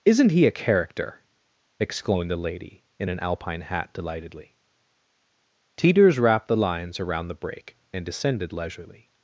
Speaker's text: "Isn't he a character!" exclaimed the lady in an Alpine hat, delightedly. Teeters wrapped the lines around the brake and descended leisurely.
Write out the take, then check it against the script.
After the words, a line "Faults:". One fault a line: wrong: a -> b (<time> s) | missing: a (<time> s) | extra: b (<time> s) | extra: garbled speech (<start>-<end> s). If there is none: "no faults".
"Isn't he a character!" exclaimed the lady in an Alpine hat, delightedly. Teeters wrapped the lines around the brake and descended leisurely.
Faults:
no faults